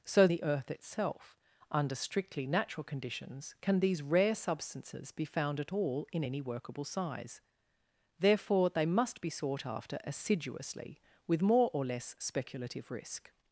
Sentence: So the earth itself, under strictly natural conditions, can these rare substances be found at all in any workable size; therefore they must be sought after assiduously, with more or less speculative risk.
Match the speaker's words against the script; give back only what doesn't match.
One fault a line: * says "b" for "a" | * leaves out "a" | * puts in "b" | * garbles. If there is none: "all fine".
all fine